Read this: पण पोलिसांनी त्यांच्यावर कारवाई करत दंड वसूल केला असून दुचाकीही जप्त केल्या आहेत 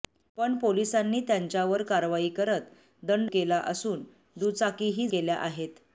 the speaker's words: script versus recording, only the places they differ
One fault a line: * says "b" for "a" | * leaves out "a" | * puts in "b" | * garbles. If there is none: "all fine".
* leaves out "वसूल"
* leaves out "जप्त"